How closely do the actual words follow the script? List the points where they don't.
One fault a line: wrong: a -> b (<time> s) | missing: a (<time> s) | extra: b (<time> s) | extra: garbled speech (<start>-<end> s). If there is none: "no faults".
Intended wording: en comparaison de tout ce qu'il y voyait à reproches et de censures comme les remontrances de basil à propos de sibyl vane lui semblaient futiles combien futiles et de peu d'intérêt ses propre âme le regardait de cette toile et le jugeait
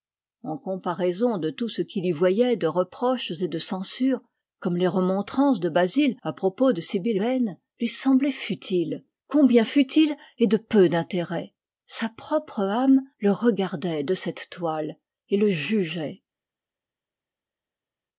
wrong: à -> de (2.5 s)
wrong: ses -> sa (11.9 s)